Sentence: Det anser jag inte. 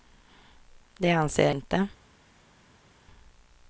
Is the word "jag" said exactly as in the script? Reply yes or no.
no